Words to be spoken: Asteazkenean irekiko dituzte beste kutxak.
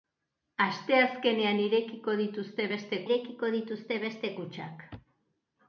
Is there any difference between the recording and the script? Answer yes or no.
yes